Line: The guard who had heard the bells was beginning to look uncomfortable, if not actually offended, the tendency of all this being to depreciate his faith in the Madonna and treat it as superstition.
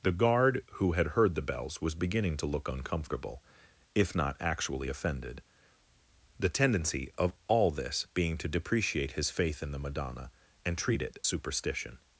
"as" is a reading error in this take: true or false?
true